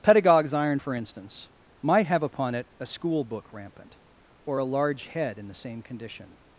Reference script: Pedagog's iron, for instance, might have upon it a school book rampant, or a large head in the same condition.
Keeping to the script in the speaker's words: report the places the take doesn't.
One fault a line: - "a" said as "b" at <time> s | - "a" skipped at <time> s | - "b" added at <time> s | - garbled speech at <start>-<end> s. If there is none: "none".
none